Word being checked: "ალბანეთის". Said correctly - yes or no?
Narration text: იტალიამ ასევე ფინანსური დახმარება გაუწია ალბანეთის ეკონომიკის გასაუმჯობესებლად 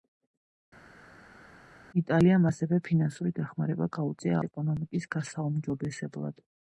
no